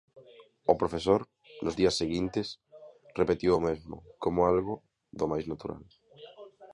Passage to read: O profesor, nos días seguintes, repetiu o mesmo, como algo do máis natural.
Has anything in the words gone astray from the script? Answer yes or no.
no